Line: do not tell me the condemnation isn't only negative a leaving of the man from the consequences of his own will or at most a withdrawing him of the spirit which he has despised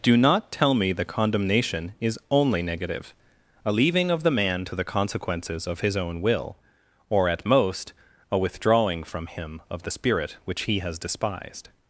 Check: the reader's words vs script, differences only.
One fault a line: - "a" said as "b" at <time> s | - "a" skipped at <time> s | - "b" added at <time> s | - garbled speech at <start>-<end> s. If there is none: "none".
- "isn't" said as "is" at 2.0 s
- "from" said as "to" at 4.6 s
- "from" added at 9.0 s